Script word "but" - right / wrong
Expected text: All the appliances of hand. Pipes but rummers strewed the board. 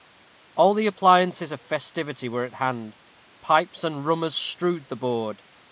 wrong